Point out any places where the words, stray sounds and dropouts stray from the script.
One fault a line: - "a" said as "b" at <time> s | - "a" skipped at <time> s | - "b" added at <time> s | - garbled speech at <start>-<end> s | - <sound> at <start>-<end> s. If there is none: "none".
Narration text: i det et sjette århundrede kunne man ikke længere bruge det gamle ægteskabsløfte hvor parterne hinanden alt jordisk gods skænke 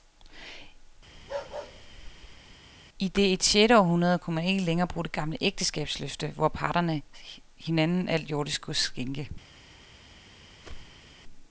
- bark at 1.1-2.6 s
- whoosh at 10.6-11.1 s